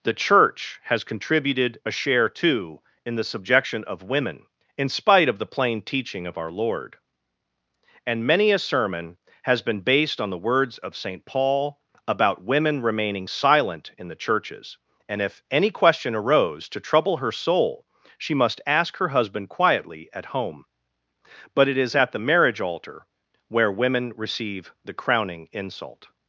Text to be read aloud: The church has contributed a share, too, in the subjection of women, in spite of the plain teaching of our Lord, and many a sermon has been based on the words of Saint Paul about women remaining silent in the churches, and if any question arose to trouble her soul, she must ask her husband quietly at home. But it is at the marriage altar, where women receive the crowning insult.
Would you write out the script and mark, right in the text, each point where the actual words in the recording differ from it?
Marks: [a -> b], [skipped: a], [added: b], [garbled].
The church has contributed a share, too, in the subjection of women, in spite of the plain teaching of our Lord, and many a sermon has been based on the words of Saint Paul about women remaining silent in the churches, and if any question arose to trouble her soul, she must ask her husband quietly at home. But it is at the marriage altar, where women receive the crowning insult.